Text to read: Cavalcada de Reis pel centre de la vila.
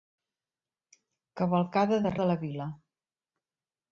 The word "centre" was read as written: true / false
false